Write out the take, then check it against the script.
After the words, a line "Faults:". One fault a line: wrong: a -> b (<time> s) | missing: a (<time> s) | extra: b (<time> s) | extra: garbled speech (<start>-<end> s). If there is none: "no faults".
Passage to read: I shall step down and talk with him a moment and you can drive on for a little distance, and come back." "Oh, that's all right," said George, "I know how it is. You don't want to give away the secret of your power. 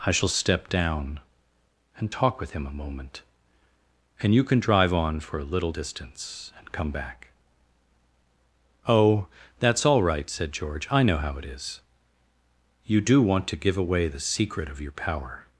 I shall step down and talk with him a moment and you can drive on for a little distance, and come back." "Oh, that's all right," said George, "I know how it is. You do want to give away the secret of your power.
Faults:
wrong: don't -> do (13.0 s)